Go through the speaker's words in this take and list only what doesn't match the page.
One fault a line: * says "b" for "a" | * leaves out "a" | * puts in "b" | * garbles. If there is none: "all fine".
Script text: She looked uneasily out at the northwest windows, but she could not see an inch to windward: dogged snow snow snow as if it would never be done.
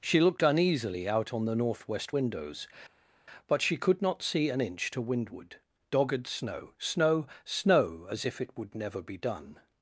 * says "on" for "at"